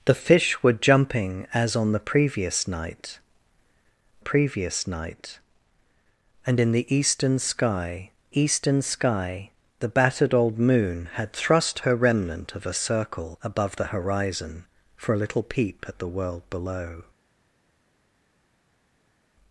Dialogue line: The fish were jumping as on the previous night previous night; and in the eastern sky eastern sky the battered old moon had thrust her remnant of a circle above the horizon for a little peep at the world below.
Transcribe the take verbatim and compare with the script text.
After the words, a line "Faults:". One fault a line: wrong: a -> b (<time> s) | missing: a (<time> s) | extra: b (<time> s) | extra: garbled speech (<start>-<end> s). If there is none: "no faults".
The fish were jumping as on the previous night previous night; and in the eastern sky eastern sky the battered old moon had thrust her remnant of a circle above the horizon for a little peep at the world below.
Faults:
no faults